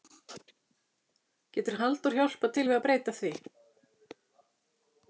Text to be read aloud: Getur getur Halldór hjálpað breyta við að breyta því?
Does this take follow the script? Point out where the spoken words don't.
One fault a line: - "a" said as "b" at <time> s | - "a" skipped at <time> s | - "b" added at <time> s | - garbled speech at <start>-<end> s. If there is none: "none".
- "getur" skipped at 1.8 s
- "breyta" said as "til" at 2.6 s